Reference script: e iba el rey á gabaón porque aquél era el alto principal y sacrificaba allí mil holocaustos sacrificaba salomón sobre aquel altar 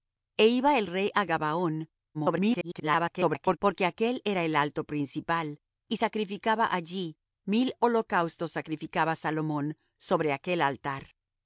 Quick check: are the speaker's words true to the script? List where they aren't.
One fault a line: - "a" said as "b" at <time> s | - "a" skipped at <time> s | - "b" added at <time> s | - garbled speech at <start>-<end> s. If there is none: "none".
- garbled speech at 2.1-3.6 s